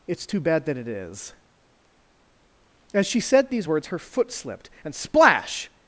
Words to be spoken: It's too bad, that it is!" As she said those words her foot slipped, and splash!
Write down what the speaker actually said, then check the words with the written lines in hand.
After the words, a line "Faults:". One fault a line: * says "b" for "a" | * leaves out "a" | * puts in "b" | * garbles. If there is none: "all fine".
It's too bad, that it is!" As she said these words her foot slipped, and splash!
Faults:
* says "these" for "those"